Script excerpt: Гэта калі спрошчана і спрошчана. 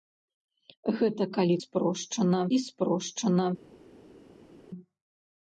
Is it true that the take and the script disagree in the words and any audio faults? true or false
false